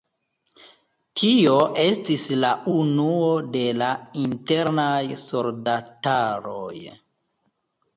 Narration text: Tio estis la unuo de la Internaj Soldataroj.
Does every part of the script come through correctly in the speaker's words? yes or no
yes